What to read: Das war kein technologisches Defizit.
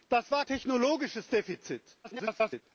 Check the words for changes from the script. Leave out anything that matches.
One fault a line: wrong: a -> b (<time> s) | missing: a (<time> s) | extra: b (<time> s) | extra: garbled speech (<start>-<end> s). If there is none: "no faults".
missing: kein (0.5 s)
extra: garbled speech (2.0-2.6 s)